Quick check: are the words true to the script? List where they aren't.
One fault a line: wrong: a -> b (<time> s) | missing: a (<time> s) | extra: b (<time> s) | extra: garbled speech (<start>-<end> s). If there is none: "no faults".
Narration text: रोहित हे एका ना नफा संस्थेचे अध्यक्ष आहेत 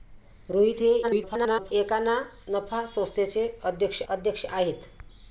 extra: garbled speech (1.0-1.7 s)
extra: अध्यक्ष (4.1 s)